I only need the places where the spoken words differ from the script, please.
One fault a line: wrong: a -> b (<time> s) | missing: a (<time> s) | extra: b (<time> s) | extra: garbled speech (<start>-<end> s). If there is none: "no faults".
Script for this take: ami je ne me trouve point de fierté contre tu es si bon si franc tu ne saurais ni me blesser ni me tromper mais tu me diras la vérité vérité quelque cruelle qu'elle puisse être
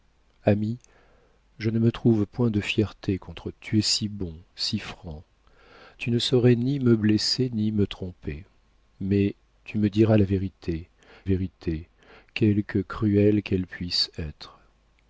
no faults